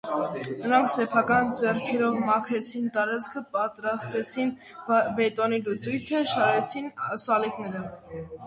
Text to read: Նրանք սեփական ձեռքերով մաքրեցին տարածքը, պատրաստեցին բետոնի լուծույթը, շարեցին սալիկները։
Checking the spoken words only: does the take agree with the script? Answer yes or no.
yes